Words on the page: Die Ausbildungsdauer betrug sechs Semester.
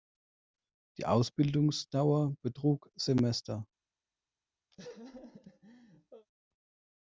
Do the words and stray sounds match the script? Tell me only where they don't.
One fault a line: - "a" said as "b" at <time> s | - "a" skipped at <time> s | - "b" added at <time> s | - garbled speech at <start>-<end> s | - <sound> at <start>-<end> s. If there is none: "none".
- "sechs" skipped at 2.9 s
- laugh at 4.7-6.3 s